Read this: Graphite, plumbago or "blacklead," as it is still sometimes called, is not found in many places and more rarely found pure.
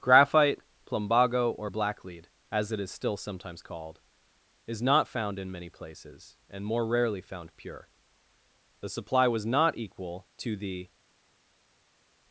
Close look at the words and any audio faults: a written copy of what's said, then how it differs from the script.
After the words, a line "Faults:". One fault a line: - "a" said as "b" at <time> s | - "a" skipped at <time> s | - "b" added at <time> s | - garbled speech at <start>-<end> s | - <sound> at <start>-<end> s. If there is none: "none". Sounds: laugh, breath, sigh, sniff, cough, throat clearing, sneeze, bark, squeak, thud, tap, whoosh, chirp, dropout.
Graphite, plumbago or "blacklead," as it is still sometimes called, is not found in many places and more rarely found pure. The supply was not equal to the
Faults:
- "The supply was not equal to the" added at 8.8 s